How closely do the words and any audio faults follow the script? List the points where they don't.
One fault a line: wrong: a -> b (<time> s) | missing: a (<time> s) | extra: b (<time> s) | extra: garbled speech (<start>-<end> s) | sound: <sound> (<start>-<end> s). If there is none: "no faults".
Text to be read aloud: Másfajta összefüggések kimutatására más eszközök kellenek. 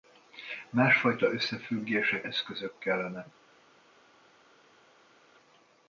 missing: kimutatására más (2.2 s)